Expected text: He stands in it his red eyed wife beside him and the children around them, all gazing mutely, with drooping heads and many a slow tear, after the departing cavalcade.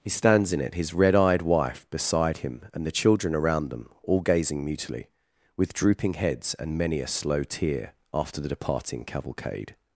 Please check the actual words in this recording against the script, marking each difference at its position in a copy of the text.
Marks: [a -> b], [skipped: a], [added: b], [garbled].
He stands in it his red eyed wife beside him and the children around them, all gazing mutely, with drooping heads and many a slow tear, after the departing cavalcade.